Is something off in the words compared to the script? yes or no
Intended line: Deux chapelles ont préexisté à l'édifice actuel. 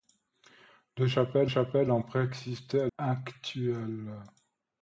yes